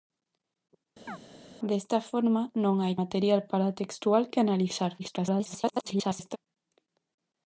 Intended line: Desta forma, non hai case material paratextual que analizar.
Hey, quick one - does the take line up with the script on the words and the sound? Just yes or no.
no